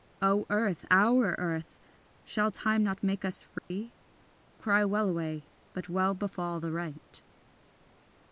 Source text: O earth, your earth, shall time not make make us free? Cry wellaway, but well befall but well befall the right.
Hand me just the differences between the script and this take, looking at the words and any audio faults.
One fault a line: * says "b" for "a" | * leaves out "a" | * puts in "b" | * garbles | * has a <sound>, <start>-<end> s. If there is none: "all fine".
* says "our" for "your"
* leaves out "make"
* has a dropout, 3.6-3.7 s
* leaves out "but well befall"